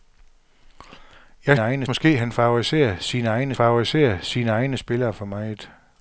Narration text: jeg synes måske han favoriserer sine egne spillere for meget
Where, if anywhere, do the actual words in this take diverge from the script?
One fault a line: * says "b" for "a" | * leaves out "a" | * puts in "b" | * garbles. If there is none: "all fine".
* says "egne" for "synes"
* puts in "favoriserer sine egne"